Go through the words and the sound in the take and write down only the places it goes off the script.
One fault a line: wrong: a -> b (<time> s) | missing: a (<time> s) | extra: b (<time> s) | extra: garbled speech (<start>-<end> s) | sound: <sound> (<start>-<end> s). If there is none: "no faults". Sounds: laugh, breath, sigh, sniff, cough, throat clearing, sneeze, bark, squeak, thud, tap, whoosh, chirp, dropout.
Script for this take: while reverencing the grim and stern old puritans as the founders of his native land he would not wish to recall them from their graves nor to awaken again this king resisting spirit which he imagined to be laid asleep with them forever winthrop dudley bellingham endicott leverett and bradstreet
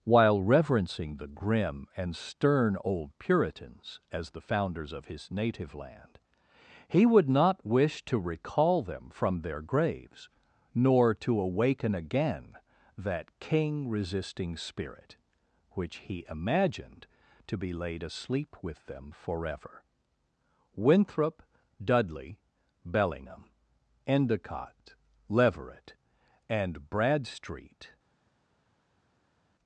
wrong: this -> that (13.0 s)